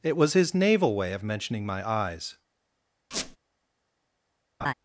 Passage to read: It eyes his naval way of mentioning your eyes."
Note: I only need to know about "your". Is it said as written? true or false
false